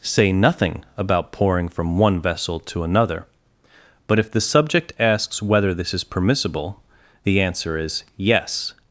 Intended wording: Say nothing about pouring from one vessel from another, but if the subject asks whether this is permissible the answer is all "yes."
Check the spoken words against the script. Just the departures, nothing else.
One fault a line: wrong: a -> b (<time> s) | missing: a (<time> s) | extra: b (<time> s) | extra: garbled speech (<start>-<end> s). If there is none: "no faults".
wrong: from -> to (2.6 s)
missing: all (8.0 s)